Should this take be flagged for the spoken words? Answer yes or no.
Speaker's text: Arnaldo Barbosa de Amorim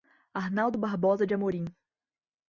no